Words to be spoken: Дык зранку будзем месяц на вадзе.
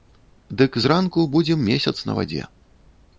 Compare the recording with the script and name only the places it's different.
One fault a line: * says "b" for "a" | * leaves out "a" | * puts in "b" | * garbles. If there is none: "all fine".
all fine